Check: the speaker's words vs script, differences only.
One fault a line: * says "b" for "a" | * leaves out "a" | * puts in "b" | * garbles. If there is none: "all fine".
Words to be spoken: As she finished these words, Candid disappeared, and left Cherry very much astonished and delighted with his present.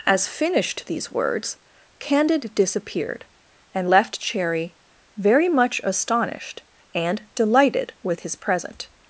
* leaves out "she"